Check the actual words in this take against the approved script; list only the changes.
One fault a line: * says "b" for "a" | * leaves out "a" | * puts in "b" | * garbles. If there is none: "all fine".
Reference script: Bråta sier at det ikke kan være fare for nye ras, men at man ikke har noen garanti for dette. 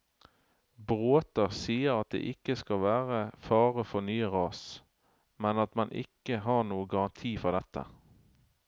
* says "skal" for "kan"